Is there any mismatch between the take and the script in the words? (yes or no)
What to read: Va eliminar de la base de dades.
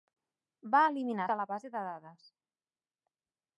no